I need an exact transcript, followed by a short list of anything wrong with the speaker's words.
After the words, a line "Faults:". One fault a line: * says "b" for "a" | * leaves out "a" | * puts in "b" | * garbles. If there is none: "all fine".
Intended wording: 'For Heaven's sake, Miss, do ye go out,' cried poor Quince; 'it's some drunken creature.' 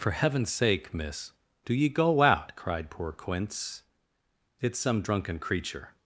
'For Heaven's sake, Miss, do ye go out,' cried poor Quince; 'it's some drunken creature.'
Faults:
all fine